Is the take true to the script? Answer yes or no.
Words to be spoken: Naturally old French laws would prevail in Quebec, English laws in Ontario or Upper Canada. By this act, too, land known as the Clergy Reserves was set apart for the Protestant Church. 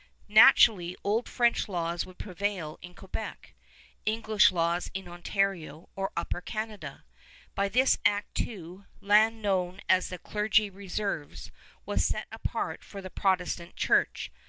yes